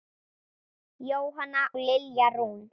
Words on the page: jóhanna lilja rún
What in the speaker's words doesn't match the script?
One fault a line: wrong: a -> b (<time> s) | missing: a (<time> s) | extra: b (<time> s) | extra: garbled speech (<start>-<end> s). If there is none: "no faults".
no faults